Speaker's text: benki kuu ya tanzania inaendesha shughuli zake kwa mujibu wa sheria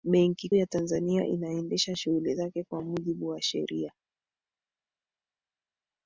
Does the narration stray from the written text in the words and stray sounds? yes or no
yes